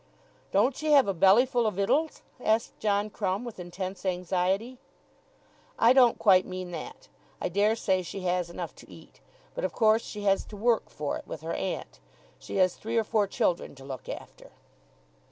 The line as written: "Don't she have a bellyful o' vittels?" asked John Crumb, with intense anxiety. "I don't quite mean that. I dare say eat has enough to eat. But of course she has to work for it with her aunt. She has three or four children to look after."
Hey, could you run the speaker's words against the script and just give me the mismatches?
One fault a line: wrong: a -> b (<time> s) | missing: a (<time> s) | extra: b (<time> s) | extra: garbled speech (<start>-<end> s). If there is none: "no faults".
wrong: eat -> she (8.0 s)